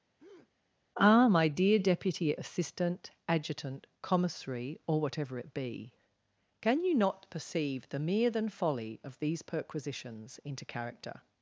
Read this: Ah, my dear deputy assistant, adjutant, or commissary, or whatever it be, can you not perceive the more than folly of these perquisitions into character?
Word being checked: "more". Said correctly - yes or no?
no